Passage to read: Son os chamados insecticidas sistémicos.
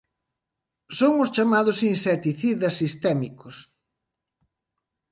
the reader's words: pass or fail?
pass